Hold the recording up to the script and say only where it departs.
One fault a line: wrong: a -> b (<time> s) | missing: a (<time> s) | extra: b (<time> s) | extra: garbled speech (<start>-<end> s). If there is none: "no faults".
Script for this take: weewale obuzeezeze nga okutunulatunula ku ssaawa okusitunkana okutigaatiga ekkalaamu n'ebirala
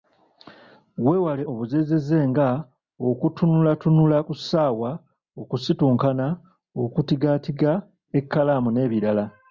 no faults